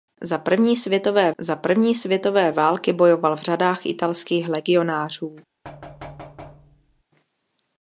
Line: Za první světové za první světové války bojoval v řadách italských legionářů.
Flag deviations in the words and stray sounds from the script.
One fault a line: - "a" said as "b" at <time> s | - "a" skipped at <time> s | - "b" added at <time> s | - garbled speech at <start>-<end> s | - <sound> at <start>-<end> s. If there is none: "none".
- thud at 5.6-7.0 s